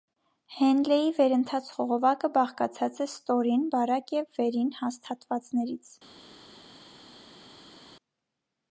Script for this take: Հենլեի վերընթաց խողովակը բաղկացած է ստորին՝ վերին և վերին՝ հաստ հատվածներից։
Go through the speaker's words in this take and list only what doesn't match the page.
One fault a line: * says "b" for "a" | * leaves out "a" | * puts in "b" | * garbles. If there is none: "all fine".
* says "բարակ" for "վերին"